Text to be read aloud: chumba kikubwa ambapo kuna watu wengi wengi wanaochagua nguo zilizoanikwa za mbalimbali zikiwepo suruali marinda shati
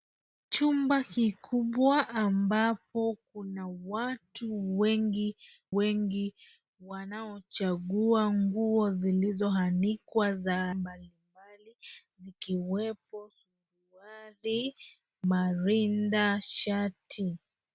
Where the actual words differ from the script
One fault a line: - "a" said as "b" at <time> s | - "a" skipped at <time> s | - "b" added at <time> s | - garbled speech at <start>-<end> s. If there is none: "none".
none